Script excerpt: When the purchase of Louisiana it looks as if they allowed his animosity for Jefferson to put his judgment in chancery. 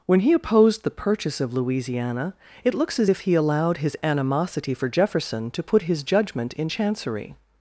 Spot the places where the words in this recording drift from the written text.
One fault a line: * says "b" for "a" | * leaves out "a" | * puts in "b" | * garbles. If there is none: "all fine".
* puts in "he opposed"
* says "he" for "they"